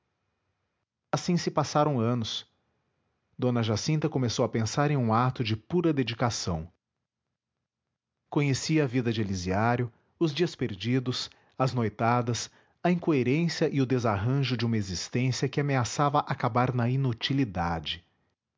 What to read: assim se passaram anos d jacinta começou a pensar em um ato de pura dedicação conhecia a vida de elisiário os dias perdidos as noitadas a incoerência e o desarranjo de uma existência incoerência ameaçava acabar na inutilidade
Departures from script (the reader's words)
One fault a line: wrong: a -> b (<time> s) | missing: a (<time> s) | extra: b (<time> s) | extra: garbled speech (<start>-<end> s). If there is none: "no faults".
wrong: incoerência -> que (15.5 s)